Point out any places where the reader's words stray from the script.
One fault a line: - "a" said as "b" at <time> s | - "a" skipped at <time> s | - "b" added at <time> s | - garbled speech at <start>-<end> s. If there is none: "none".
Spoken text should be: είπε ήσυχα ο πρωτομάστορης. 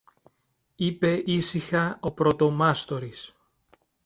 none